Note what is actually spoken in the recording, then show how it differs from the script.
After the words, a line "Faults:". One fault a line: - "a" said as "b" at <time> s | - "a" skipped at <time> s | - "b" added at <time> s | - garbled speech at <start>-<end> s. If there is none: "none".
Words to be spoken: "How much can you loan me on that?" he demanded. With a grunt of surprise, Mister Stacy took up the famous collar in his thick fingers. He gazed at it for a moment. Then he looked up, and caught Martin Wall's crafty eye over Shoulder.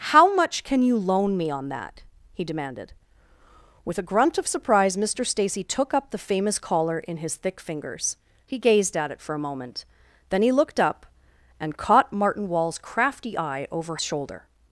"How much can you loan me on that?" he demanded. With a grunt of surprise, Mister Stacy took up the famous collar in his thick fingers. He gazed at it for a moment. Then he looked up, and caught Martin Wall's crafty eye over Shoulder.
Faults:
none